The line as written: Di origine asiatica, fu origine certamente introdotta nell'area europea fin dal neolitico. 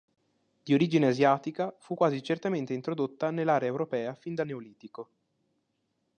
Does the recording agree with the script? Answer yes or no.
no